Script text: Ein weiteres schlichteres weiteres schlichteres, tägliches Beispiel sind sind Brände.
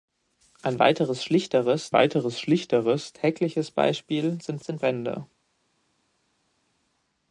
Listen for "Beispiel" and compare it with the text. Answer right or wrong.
right